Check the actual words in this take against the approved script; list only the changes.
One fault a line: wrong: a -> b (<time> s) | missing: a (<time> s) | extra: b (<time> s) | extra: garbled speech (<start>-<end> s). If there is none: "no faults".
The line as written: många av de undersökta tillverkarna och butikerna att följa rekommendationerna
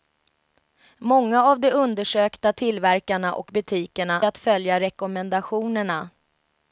no faults